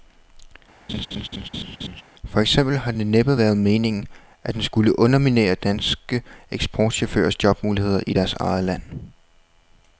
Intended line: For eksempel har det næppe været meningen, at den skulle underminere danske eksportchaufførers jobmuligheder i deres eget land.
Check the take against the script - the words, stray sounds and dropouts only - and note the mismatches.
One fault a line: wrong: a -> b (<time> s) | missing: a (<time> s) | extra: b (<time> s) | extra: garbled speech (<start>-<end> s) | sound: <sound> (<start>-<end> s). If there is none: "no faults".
sound: laugh (0.9-2.0 s)